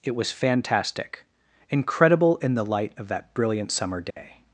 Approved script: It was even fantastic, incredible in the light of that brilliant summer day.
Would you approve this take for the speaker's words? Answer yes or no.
no